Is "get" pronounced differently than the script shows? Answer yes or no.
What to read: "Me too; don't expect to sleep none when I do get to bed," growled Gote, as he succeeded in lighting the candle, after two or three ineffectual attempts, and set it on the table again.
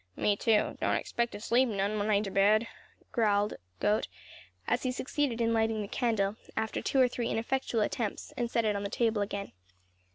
yes